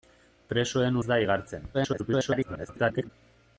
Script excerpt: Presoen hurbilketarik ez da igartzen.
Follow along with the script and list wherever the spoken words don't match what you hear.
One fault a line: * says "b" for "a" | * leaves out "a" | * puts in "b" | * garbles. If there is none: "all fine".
* leaves out "hurbilketarik"
* garbles